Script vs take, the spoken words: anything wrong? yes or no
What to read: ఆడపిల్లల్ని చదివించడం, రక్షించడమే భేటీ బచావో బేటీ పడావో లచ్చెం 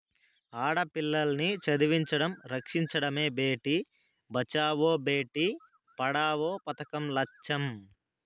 yes